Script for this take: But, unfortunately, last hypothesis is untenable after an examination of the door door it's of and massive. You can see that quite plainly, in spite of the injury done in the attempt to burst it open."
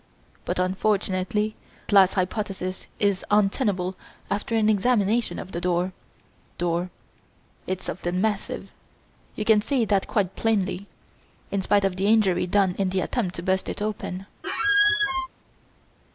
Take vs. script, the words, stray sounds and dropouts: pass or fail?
fail